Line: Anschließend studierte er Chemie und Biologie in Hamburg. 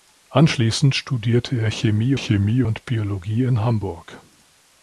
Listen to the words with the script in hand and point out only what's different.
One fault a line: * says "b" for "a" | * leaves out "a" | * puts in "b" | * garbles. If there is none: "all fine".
* puts in "Chemie"